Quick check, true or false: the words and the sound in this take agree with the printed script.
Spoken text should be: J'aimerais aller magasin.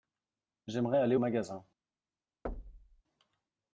false